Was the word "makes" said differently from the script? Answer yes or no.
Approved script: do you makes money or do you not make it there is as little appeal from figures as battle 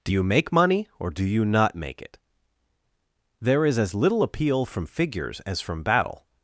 yes